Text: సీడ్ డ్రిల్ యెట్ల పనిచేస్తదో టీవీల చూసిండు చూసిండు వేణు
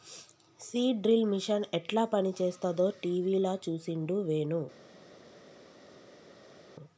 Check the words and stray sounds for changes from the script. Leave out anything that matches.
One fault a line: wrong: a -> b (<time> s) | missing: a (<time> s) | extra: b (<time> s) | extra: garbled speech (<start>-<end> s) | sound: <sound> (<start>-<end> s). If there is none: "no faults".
extra: మిషన్ (1.3 s)
missing: చూసిండు (4.2 s)